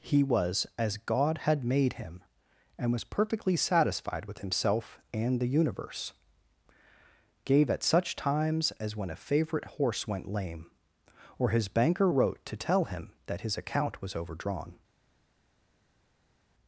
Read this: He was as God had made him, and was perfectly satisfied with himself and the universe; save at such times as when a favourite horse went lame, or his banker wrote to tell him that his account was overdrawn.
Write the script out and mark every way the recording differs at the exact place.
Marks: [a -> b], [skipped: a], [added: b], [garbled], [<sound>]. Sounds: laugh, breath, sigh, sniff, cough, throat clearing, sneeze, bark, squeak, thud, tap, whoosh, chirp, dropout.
He was as God had made him, and was perfectly satisfied with himself and the universe; [save -> gave] at such times as when a favourite horse went lame, or his banker wrote to tell him that his account was overdrawn.